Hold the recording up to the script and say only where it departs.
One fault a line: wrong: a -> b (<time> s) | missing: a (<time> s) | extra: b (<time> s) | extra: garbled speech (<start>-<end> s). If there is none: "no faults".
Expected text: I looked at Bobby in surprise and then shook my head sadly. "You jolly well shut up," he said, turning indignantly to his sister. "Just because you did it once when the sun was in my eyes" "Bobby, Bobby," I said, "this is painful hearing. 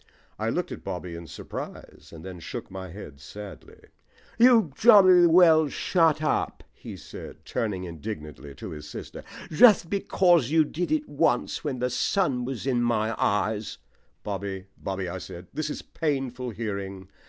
no faults